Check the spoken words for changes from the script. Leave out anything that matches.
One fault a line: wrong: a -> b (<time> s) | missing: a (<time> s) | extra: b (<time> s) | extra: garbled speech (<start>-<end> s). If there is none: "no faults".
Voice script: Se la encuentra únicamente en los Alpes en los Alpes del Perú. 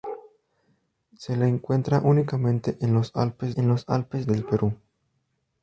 no faults